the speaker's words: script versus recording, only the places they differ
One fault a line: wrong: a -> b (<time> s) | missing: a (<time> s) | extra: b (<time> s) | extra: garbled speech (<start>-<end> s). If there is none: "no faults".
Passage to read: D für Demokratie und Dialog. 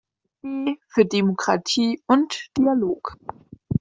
no faults